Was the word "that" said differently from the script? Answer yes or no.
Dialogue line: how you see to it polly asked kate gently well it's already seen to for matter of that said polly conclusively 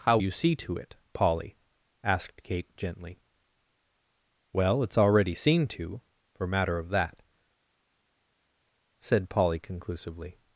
no